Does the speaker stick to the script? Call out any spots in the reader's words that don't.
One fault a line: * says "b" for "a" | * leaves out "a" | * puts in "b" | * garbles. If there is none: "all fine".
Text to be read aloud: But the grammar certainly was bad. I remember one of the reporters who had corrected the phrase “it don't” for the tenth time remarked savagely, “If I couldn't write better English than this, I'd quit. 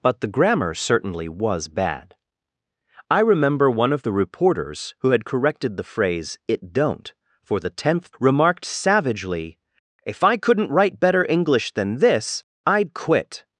* leaves out "time"